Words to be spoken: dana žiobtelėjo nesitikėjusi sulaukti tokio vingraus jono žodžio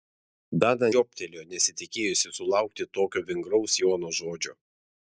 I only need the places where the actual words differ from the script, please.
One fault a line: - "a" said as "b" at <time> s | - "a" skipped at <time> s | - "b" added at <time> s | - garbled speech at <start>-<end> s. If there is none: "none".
none